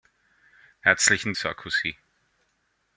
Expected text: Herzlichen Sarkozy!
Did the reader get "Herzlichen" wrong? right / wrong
right